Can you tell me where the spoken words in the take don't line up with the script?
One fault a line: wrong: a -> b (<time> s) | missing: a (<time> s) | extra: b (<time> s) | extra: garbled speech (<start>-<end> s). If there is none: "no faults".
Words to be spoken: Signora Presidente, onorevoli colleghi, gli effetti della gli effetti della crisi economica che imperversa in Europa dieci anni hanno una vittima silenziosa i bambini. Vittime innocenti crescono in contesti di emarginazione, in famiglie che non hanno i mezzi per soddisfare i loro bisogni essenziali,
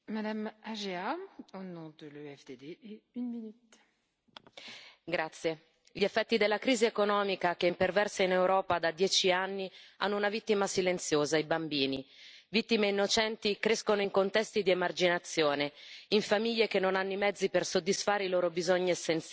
missing: gli effetti della (6.6 s)
extra: da (8.8 s)